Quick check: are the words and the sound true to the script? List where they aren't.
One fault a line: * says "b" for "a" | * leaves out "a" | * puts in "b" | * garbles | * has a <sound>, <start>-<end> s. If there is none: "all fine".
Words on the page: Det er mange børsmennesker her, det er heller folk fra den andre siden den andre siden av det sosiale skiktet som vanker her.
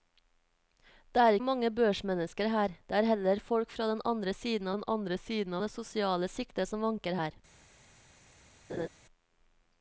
* has a laugh, 8.7-8.9 s